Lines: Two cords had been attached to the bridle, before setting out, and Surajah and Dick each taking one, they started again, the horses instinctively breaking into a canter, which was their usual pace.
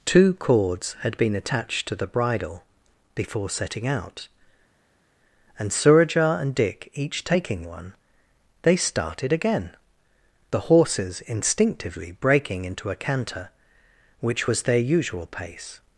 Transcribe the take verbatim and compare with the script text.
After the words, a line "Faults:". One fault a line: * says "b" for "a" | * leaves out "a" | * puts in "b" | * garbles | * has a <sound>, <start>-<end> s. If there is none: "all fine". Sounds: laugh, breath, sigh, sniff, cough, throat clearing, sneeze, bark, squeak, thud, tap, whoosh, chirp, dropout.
Two cords had been attached to the bridle, before setting out, and Surajah and Dick each taking one, they started again, the horses instinctively breaking into a canter, which was their usual pace.
Faults:
all fine